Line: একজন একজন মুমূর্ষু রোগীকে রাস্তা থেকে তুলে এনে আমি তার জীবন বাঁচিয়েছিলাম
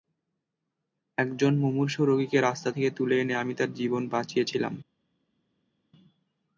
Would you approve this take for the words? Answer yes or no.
no